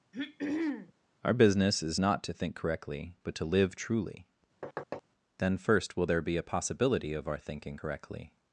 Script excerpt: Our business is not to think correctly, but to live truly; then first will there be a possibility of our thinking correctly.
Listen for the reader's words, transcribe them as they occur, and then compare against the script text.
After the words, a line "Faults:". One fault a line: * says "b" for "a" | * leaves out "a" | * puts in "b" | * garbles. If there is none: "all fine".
Our business is not to think correctly, but to live truly; then first will there be a possibility of our thinking correctly.
Faults:
all fine